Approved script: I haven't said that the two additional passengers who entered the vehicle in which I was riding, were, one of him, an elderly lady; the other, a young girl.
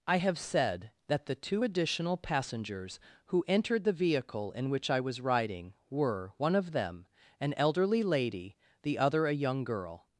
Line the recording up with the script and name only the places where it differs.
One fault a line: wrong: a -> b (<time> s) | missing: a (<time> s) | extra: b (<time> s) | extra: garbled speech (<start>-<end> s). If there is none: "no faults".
wrong: haven't -> have (0.1 s)
wrong: him -> them (6.7 s)